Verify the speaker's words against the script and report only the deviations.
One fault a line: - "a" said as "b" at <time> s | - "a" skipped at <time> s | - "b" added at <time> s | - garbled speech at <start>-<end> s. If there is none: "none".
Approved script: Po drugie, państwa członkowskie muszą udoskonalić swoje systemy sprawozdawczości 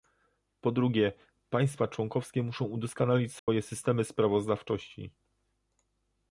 none